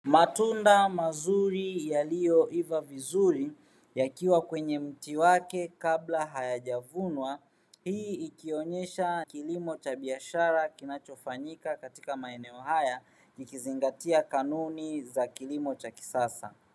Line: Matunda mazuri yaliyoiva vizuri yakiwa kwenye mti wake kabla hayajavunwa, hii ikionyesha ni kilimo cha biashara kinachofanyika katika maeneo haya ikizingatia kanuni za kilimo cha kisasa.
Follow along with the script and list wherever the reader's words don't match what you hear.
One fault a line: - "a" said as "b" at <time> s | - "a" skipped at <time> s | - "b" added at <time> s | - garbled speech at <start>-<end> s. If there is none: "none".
- "ni" skipped at 9.2 s